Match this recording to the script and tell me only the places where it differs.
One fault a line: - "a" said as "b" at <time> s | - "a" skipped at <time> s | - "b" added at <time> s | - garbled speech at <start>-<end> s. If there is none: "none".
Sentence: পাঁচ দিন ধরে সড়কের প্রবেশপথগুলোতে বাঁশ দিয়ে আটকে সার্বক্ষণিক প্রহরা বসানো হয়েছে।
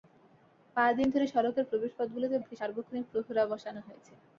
- "বাঁশ দিয়ে" skipped at 2.4 s